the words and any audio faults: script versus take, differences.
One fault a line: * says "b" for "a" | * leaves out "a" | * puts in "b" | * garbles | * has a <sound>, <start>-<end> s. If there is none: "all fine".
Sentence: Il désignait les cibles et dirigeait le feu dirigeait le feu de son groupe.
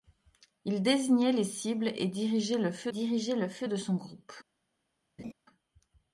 * has a laugh, 5.2-5.3 s